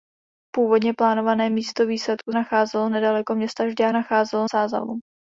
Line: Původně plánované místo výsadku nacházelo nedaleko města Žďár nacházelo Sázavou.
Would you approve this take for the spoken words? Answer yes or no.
yes